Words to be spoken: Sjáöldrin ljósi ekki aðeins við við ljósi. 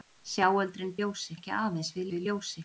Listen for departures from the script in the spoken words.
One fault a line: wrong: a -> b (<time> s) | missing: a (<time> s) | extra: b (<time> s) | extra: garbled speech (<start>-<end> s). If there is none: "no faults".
no faults